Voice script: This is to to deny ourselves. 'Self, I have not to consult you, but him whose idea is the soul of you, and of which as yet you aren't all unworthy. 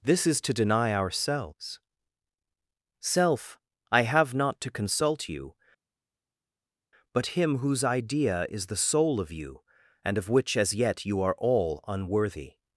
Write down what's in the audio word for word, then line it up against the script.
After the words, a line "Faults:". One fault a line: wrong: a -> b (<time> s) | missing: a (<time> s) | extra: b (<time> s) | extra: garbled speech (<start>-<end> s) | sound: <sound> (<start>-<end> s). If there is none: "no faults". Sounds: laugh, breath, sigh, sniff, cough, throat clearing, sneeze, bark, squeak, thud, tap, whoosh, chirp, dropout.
This is to deny ourselves. 'Self, I have not to consult you, but him whose idea is the soul of you, and of which as yet you are all unworthy.
Faults:
missing: to (0.5 s)
wrong: aren't -> are (11.2 s)